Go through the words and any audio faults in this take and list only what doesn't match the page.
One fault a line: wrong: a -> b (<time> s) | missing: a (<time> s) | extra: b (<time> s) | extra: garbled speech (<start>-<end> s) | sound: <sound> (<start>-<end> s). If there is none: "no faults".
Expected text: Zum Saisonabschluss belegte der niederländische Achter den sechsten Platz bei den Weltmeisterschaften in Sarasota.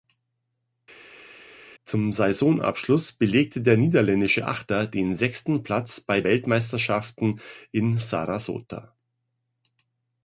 missing: den (6.2 s)